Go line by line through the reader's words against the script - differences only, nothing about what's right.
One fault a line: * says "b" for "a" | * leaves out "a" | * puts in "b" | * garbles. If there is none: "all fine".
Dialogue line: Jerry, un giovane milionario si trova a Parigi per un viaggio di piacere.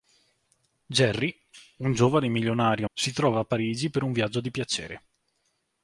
all fine